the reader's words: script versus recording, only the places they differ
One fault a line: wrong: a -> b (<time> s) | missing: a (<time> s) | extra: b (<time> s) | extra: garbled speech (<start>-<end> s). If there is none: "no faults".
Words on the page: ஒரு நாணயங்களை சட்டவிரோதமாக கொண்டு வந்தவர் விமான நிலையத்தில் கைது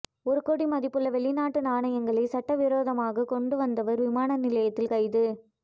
extra: கோடி மதிப்புள்ள வெளிநாட்டு (0.4 s)